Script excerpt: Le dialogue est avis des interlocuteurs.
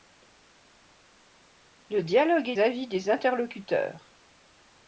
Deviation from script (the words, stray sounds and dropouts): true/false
false